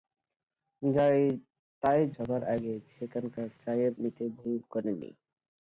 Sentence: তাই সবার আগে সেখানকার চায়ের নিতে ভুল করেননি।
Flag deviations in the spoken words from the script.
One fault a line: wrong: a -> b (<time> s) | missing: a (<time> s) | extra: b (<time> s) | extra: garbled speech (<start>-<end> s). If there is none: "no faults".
no faults